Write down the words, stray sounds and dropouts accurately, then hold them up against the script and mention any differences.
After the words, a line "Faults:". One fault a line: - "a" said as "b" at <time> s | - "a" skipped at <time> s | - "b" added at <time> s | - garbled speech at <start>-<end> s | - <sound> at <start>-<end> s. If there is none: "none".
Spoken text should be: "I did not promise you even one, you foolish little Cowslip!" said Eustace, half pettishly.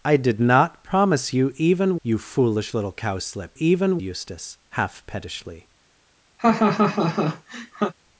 "I did not promise you even you foolish little Cowslip!" even Eustace, half pettishly.
Faults:
- "one" skipped at 2.0 s
- "said" said as "even" at 3.6 s
- laugh at 6.4-7.9 s